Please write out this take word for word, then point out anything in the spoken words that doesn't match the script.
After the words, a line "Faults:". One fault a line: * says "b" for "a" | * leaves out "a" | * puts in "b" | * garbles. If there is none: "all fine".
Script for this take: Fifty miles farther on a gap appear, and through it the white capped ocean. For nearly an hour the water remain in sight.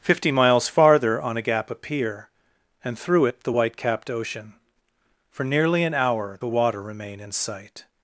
Fifty miles farther on a gap appear, and through it the white capped ocean. For nearly an hour the water remain in sight.
Faults:
all fine